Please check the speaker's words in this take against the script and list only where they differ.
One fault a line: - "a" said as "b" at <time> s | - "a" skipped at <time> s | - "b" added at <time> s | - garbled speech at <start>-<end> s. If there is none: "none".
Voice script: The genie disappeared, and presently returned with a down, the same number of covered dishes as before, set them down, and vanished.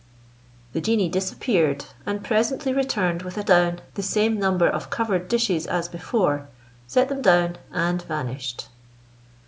none